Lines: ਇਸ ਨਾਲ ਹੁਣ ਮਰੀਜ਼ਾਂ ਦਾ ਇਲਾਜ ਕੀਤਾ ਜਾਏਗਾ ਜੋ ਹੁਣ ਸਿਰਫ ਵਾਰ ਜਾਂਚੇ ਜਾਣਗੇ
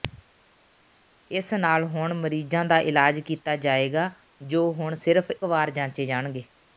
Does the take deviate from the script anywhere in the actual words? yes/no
no